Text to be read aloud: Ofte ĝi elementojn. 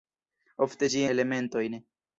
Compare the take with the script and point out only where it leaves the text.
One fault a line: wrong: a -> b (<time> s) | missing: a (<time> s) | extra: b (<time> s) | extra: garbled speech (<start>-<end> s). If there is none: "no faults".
no faults